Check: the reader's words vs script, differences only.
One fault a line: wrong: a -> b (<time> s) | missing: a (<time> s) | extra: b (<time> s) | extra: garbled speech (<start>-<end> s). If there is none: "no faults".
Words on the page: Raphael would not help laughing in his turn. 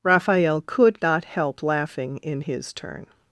wrong: would -> could (0.6 s)